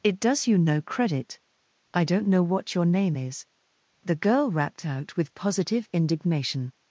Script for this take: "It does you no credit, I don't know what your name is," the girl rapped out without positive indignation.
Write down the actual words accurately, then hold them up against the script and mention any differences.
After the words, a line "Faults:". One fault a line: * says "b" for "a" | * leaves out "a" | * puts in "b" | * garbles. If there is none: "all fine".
"It does you no credit, I don't know what your name is," the girl rapped out with positive indignation.
Faults:
* says "with" for "without"